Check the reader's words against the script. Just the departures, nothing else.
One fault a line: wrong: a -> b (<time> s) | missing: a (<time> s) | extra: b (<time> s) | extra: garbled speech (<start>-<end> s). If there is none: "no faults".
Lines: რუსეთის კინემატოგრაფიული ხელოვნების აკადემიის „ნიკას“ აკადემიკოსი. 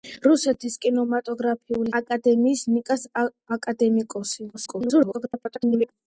missing: ხელოვნების (1.9 s)
extra: garbled speech (4.5-5.9 s)